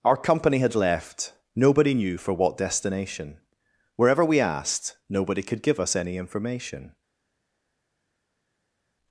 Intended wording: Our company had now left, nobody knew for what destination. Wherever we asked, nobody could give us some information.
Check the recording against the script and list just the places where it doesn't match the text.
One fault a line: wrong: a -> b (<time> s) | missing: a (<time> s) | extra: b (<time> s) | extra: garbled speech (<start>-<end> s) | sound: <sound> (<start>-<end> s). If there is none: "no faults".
missing: now (0.7 s)
wrong: some -> any (6.0 s)